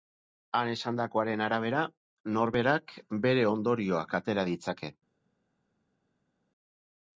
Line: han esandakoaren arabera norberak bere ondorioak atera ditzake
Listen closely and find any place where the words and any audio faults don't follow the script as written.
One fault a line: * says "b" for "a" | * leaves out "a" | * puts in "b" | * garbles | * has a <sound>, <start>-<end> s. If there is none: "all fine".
all fine